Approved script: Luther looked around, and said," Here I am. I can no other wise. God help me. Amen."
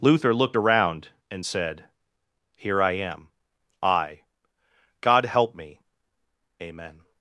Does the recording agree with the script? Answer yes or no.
no